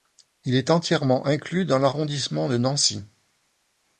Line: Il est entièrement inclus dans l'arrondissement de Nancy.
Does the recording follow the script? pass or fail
pass